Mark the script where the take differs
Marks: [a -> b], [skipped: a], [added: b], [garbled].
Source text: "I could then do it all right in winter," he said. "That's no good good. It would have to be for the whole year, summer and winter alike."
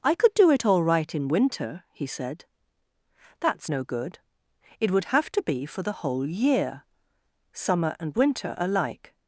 "I could [skipped: then] do it all right in winter," he said. "That's no good [skipped: good.] It would have to be for the whole year, summer and winter alike."